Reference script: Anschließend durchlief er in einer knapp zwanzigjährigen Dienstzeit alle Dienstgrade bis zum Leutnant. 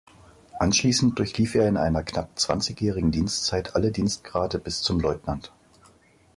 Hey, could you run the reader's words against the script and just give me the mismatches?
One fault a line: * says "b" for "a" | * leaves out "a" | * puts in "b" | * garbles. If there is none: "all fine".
all fine